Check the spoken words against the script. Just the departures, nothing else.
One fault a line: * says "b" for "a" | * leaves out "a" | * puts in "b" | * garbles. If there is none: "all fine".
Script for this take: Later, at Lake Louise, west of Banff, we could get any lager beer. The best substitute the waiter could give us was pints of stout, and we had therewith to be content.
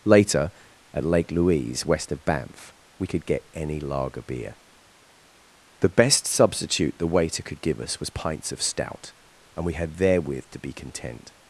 all fine